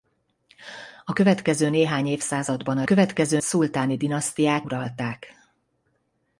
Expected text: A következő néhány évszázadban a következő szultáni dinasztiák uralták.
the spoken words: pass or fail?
pass